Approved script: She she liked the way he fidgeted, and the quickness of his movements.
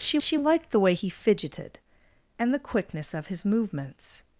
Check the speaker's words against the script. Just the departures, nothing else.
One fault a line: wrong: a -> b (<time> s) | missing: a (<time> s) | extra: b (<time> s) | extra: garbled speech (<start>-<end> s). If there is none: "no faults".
no faults